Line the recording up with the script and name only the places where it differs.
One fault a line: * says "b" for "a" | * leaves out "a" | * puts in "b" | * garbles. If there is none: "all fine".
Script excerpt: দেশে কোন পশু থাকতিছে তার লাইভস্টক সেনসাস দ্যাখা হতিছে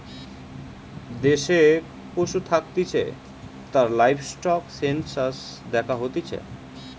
* leaves out "কোন"